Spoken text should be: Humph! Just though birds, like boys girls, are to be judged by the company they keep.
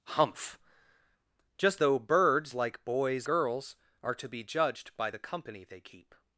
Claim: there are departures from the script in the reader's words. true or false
false